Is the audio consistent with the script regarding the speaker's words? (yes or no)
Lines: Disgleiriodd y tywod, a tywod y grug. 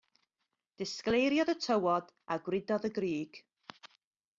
no